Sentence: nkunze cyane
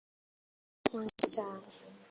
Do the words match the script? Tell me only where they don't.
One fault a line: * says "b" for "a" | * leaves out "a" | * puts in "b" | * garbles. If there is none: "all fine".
all fine